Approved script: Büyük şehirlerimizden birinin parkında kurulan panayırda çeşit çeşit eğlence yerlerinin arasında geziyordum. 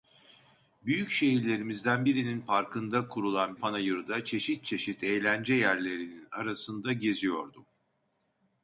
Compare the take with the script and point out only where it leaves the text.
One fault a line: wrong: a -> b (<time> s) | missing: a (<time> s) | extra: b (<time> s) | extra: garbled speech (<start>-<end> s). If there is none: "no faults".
no faults